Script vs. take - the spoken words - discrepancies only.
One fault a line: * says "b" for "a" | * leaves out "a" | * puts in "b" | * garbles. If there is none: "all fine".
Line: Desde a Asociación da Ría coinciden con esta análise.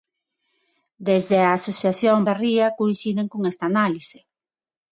all fine